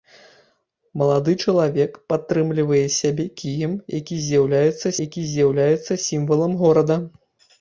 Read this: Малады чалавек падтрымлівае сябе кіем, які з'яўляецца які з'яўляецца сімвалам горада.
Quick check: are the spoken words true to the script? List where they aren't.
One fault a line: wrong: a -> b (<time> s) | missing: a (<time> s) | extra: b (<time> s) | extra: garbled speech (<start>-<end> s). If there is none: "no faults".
no faults